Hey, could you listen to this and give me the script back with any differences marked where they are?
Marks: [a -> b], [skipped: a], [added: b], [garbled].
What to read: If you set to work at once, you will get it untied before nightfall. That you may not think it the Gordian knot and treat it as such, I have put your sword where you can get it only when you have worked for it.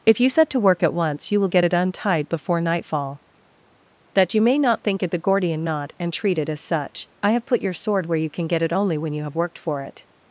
If you set to work at once, you will get it untied before nightfall. That you may not think it the Gordian knot and treat it as such, I have put your sword where you can get it only when you have worked for it.